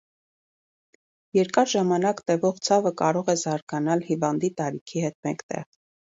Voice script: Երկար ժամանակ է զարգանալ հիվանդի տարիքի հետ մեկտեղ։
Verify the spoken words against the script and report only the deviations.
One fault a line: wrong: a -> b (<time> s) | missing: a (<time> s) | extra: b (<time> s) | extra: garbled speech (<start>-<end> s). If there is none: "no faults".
extra: տևող ցավը կարող (2.3 s)